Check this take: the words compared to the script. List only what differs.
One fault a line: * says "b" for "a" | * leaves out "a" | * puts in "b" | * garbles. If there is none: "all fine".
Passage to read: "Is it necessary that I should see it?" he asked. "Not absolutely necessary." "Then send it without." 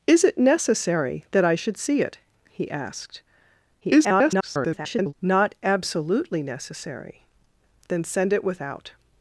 * garbles